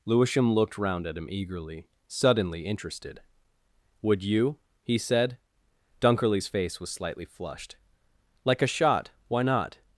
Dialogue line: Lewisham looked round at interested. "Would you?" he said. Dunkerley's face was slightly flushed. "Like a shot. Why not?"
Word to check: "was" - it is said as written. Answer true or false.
true